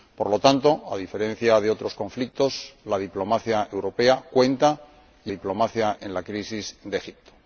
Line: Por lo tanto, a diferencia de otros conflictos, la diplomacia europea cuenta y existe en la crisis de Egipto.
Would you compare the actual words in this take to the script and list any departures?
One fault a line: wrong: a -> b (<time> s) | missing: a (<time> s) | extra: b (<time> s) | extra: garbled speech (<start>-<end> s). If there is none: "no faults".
wrong: existe -> diplomacia (5.3 s)